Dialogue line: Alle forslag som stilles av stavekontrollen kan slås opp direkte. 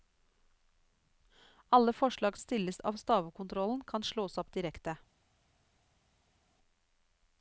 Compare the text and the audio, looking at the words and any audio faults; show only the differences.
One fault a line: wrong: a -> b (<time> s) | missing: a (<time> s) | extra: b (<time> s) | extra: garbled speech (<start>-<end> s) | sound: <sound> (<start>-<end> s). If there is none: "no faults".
missing: som (2.4 s)